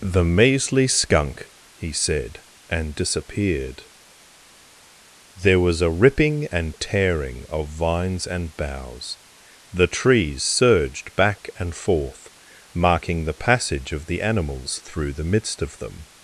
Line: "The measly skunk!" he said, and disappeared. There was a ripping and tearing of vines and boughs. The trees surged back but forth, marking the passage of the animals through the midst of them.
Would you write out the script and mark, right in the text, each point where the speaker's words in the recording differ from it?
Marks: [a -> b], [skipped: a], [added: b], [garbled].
"The measly skunk!" he said, and disappeared. There was a ripping and tearing of vines and boughs. The trees surged back [but -> and] forth, marking the passage of the animals through the midst of them.